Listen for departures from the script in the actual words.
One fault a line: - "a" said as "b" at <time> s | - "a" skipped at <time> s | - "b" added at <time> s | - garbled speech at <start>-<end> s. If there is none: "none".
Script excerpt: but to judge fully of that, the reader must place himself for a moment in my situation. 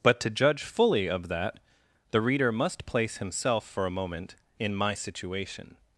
none